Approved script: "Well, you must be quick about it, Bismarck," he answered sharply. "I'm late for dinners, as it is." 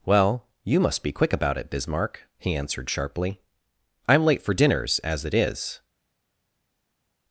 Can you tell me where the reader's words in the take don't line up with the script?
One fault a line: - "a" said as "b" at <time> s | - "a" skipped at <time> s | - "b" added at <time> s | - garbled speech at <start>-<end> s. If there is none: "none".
none